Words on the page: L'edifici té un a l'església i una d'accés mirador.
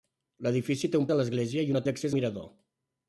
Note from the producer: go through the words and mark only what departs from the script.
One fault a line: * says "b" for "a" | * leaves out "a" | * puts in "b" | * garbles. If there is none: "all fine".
all fine